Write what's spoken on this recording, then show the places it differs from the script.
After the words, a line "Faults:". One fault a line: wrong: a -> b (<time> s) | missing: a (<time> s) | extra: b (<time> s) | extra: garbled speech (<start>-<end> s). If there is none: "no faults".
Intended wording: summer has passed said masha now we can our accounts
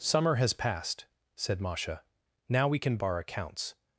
summer has passed said masha now we can our accounts
Faults:
no faults